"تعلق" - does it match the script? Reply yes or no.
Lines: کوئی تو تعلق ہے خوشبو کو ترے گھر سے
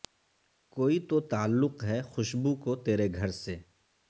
yes